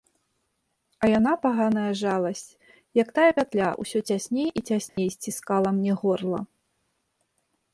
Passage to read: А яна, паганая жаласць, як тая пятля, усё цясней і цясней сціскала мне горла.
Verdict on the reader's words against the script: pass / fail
pass